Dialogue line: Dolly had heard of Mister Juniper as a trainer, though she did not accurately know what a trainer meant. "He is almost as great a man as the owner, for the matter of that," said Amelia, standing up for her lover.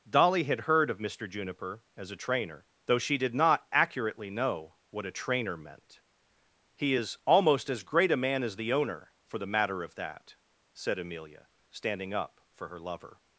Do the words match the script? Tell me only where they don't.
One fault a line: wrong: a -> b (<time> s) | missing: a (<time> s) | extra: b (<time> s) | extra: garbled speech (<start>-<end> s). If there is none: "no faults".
no faults